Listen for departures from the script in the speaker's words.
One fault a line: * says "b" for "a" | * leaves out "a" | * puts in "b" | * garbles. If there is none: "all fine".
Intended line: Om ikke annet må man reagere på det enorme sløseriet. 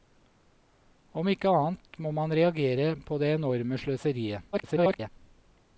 * garbles